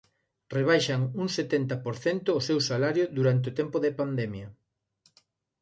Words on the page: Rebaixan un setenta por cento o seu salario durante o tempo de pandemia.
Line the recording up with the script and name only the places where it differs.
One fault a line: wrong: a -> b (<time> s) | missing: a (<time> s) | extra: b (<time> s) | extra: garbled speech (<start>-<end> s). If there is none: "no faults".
no faults